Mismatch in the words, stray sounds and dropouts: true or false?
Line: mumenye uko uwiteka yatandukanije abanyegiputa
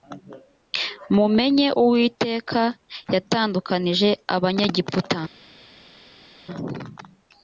true